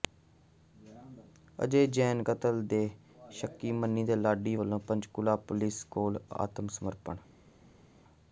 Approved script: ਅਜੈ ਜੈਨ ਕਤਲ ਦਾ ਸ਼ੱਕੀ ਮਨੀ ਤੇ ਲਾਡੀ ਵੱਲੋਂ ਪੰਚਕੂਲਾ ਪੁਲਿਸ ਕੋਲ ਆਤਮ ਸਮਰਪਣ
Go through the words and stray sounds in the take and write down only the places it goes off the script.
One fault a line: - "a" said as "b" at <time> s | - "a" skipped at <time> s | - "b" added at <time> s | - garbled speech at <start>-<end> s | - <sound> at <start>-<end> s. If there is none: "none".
- "ਦਾ" said as "ਦੇ" at 2.7 s